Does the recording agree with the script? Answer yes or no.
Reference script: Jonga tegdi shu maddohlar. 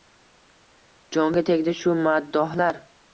yes